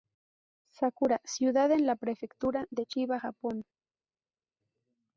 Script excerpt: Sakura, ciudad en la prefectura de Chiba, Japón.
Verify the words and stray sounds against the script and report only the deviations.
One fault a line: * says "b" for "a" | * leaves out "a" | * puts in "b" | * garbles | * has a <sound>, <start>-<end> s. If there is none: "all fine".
all fine